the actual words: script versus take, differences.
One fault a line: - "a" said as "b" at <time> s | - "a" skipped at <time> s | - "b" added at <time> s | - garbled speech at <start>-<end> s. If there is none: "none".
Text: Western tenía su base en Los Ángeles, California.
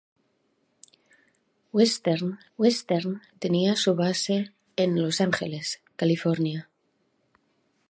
- "western" added at 2.6 s